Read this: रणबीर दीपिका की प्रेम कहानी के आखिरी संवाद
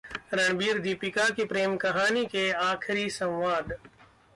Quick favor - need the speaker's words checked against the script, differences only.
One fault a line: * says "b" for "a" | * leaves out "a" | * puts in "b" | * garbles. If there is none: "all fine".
all fine